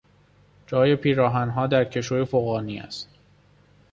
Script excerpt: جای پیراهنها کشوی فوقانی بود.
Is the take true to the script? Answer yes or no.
no